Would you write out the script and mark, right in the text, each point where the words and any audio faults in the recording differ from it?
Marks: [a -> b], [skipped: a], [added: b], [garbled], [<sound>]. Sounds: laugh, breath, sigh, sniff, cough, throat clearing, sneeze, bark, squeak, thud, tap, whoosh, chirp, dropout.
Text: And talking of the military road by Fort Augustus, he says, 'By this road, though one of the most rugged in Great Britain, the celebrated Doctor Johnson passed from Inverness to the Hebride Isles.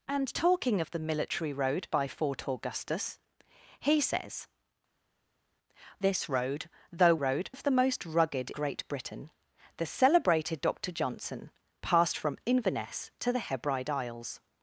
And talking of the military road by Fort Augustus, he says, [skipped: 'By] this road, though [one -> road] of the most rugged [skipped: in] Great Britain, the celebrated Doctor Johnson passed from Inverness to the Hebride Isles.